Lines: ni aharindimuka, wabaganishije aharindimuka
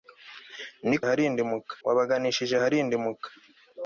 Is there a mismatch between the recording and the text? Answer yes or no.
no